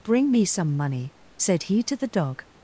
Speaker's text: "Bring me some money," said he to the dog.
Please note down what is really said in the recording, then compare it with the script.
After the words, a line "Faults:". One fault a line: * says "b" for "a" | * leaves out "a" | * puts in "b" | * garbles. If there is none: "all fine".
"Bring me some money," said he to the dog.
Faults:
all fine